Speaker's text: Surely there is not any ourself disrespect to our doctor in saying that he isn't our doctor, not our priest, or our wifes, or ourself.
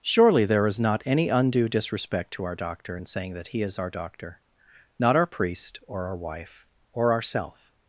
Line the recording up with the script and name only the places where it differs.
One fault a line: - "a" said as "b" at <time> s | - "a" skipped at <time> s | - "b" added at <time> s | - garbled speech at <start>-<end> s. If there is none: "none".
- "ourself" said as "undue" at 1.3 s
- "isn't" said as "is" at 3.6 s
- "wifes" said as "wife" at 6.2 s